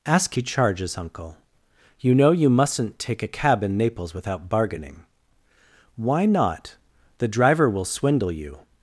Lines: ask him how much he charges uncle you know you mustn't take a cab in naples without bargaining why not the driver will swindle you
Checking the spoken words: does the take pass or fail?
fail